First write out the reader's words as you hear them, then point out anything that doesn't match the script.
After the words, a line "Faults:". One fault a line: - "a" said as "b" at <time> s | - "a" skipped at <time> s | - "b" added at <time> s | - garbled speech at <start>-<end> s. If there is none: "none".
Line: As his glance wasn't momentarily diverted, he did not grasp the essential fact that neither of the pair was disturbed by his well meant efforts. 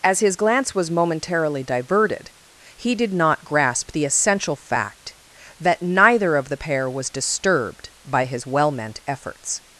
As his glance was momentarily diverted, he did not grasp the essential fact that neither of the pair was disturbed by his well meant efforts.
Faults:
- "wasn't" said as "was" at 0.7 s